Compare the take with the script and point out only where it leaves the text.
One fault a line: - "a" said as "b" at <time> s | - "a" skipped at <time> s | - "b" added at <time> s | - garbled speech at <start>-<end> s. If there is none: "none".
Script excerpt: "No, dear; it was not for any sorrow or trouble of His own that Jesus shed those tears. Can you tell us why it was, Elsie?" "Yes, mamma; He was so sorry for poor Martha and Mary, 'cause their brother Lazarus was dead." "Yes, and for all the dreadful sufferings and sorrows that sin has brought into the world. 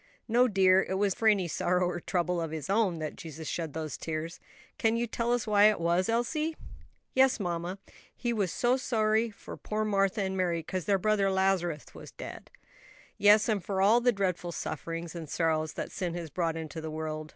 - "not" skipped at 1.1 s